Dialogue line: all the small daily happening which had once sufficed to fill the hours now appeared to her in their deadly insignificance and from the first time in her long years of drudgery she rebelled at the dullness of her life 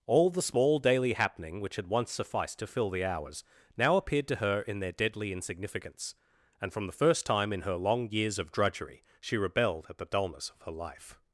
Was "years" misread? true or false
false